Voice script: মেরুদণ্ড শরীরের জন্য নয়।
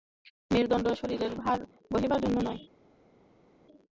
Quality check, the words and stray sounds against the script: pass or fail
fail